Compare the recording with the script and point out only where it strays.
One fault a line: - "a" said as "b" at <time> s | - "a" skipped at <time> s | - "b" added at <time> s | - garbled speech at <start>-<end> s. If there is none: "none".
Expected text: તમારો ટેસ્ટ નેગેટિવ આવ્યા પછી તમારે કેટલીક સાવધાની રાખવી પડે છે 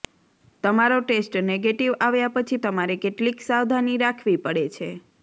none